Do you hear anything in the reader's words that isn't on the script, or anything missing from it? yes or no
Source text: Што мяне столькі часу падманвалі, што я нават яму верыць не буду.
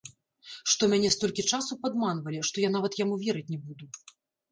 no